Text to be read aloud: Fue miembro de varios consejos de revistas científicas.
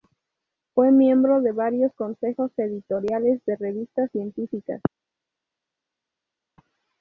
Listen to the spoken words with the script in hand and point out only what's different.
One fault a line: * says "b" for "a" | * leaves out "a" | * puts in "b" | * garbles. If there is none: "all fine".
* puts in "editoriales"